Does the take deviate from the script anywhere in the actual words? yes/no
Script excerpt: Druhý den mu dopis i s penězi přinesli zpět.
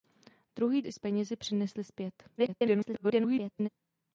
yes